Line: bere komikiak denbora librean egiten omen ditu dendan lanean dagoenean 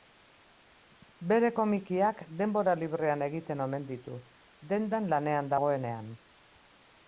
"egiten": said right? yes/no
yes